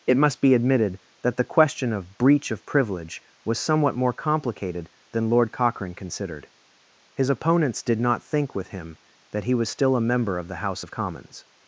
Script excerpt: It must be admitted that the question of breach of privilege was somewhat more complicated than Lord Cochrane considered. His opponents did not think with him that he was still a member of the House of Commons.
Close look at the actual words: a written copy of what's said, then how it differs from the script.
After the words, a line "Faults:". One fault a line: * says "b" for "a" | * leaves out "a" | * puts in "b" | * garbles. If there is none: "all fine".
It must be admitted that the question of breach of privilege was somewhat more complicated than Lord Cochrane considered. His opponents did not think with him that he was still a member of the House of Commons.
Faults:
all fine